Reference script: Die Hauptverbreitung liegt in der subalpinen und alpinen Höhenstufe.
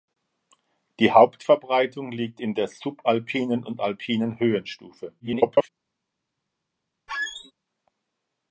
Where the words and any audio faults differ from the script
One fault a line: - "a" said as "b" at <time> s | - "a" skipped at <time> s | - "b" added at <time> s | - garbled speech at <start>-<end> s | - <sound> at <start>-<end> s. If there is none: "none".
- garbled speech at 5.2-5.7 s
- squeak at 7.1-7.5 s